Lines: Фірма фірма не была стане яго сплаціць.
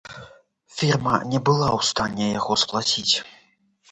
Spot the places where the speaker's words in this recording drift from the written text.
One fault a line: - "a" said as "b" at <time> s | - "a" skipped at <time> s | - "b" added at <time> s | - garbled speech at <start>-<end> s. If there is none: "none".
- "фірма" skipped at 1.1 s
- "ў" added at 1.8 s